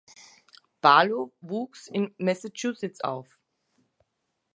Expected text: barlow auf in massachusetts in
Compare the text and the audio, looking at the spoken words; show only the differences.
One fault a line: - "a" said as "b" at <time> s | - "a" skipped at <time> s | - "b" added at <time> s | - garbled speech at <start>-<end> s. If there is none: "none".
- "auf" said as "wuchs" at 1.4 s
- "in" said as "auf" at 3.0 s